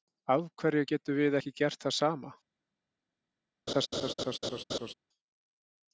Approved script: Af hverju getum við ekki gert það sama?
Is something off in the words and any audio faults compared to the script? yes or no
yes